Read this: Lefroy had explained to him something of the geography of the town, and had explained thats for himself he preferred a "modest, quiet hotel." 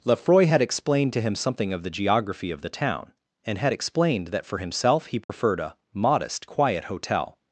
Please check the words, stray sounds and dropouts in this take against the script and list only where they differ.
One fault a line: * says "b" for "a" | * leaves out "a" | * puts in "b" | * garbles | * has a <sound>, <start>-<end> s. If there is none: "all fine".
* says "that" for "thats"
* has a dropout, 5.2-5.3 s